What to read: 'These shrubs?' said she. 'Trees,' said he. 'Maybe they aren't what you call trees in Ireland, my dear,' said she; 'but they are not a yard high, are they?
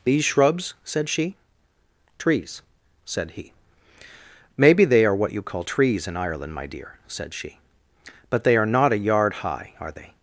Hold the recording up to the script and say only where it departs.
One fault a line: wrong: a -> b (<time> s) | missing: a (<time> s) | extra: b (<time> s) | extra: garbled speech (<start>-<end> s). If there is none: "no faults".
wrong: aren't -> are (5.0 s)